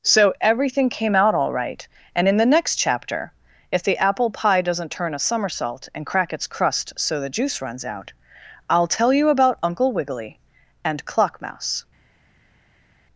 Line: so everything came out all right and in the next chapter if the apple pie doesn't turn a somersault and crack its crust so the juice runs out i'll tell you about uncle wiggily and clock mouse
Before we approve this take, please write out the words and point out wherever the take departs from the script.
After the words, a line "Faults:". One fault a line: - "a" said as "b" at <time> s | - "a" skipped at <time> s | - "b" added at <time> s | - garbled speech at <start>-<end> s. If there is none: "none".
so everything came out all right and in the next chapter if the apple pie doesn't turn a somersault and crack its crust so the juice runs out i'll tell you about uncle wiggily and clock mouse
Faults:
none